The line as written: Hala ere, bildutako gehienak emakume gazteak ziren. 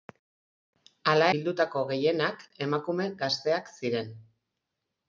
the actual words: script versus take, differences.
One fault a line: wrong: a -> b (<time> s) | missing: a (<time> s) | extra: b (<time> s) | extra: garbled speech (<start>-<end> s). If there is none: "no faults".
missing: ere (1.3 s)